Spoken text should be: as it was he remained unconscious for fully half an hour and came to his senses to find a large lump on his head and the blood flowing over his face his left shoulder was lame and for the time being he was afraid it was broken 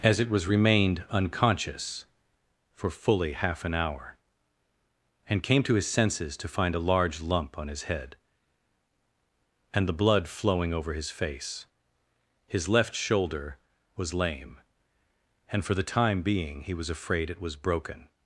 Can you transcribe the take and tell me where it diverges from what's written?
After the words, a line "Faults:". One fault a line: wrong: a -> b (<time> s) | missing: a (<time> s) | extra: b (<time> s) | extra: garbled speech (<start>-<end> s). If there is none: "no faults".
as it was remained unconscious for fully half an hour and came to his senses to find a large lump on his head and the blood flowing over his face his left shoulder was lame and for the time being he was afraid it was broken
Faults:
missing: he (0.5 s)